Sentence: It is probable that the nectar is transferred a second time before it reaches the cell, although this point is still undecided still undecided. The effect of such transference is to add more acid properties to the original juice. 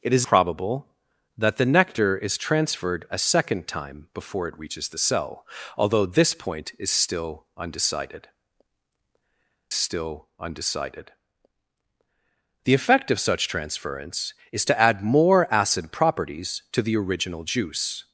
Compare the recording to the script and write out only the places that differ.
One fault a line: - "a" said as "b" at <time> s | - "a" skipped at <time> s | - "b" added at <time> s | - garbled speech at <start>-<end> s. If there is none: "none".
none